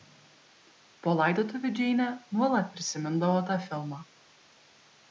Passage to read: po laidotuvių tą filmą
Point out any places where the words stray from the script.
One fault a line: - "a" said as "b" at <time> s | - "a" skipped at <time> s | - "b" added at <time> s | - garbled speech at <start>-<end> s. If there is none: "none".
- "džeinė nuolat prisimindavo" added at 1.8 s